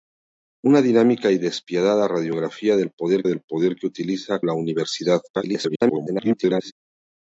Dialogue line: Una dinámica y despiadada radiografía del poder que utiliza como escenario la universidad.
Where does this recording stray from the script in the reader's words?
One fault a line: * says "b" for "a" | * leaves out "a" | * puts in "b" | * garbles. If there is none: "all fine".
* puts in "del poder"
* leaves out "como escenario"
* garbles